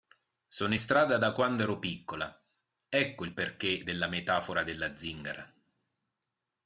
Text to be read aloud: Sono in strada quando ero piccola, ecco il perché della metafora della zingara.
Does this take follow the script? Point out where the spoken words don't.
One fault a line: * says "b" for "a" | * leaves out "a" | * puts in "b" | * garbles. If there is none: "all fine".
* puts in "da"